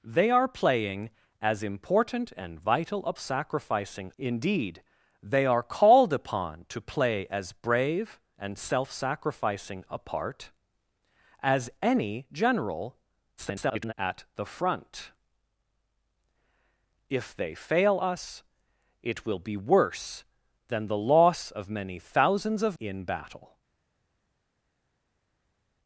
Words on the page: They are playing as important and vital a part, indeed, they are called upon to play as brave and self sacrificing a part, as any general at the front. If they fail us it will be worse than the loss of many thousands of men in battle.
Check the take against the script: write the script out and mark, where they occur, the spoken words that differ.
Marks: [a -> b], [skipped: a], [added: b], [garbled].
They are playing as important and vital a [part, -> sacrificing] indeed, they are called upon to play as brave and self sacrificing a part, as any general [garbled] at the front. If they fail us it will be worse than the loss of many thousands of [skipped: men] in battle.